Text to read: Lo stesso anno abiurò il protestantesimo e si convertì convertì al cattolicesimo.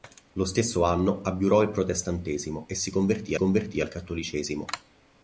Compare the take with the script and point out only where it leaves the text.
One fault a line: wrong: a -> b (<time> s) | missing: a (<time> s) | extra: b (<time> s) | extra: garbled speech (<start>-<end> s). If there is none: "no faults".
no faults